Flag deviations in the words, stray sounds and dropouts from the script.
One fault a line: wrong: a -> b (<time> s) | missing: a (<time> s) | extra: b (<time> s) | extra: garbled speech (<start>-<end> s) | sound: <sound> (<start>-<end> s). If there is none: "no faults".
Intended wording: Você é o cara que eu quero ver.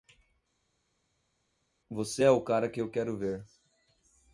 no faults